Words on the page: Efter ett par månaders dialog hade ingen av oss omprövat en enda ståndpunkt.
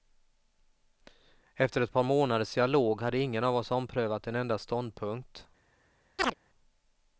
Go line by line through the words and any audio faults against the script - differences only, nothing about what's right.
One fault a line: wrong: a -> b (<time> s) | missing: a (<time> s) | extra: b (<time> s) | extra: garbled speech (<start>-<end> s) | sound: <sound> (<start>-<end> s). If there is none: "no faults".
sound: chirp (6.2-6.3 s)